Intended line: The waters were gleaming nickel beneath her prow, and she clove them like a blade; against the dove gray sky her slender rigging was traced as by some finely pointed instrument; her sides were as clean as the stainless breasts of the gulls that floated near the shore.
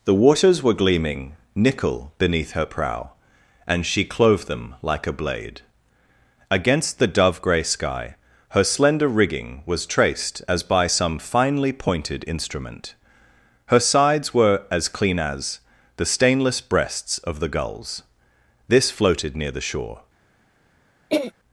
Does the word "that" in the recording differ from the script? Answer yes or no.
yes